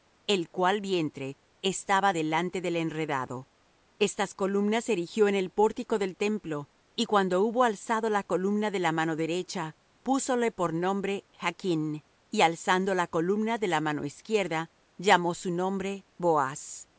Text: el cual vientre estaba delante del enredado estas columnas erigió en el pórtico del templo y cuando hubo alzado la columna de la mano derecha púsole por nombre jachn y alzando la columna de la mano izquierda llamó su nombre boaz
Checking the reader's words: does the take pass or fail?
pass